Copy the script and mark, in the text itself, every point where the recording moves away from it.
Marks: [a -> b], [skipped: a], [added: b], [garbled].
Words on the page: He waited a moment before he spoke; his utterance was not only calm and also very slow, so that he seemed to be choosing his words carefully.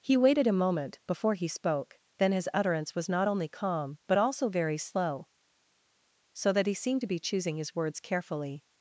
He waited a moment before he spoke; [added: then] his utterance was not only calm [and -> but] also very slow, so that he seemed to be choosing his words carefully.